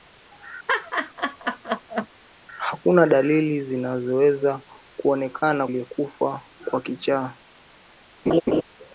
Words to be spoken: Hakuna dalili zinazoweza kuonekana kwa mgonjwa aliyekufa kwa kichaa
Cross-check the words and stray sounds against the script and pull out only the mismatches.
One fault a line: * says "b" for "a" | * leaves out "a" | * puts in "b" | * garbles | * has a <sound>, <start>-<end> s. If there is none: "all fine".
* has a laugh, 0.7-2.1 s
* leaves out "kwa mgonjwa"
* has a laugh, 8.3-8.6 s